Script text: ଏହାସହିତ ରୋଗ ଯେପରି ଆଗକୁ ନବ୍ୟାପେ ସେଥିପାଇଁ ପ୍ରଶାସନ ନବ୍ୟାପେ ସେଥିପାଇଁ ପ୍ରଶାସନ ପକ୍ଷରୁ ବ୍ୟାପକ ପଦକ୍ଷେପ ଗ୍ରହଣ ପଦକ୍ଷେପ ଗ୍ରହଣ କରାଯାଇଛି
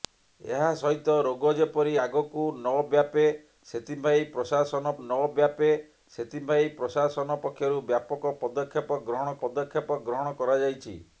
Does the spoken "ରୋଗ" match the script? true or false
true